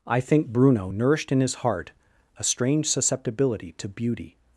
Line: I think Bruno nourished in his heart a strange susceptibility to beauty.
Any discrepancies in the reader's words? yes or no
no